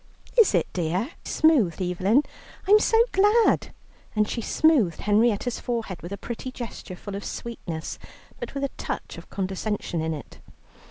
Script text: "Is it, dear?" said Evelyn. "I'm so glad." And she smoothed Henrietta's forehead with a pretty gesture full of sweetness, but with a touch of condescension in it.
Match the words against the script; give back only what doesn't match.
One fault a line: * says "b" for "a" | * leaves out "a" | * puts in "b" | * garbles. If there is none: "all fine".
* says "smoothed" for "said"